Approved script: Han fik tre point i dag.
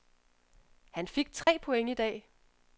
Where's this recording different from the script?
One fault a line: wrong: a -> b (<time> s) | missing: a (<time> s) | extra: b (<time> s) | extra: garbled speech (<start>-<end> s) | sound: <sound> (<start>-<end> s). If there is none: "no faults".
sound: dropout (1.4-1.5 s)